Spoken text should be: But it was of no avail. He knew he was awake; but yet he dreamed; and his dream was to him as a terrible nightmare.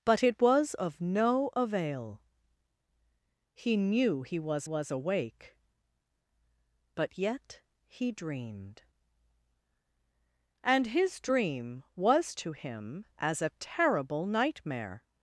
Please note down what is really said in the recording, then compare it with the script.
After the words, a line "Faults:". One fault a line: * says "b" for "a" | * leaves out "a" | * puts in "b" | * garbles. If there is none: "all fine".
But it was of no avail. He knew he was was awake; but yet he dreamed; and his dream was to him as a terrible nightmare.
Faults:
* puts in "was"